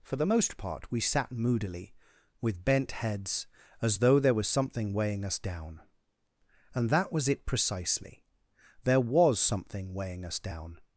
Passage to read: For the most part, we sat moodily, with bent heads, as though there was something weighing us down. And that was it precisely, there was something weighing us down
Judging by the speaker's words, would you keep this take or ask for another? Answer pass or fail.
pass